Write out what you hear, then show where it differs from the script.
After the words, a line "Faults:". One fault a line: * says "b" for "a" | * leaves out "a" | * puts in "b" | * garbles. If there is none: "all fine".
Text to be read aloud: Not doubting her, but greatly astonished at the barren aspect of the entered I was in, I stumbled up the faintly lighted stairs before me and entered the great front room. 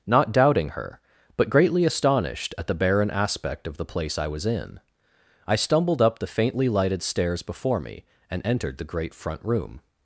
Not doubting her, but greatly astonished at the barren aspect of the place I was in, I stumbled up the faintly lighted stairs before me and entered the great front room.
Faults:
* says "place" for "entered"